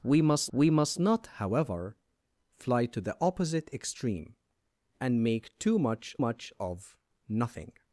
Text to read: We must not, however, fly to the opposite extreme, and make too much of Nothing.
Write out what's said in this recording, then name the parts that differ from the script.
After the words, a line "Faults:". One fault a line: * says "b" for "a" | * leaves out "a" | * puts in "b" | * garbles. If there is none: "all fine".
We must we must not, however, fly to the opposite extreme, and make too much much of Nothing.
Faults:
* puts in "we must"
* puts in "much"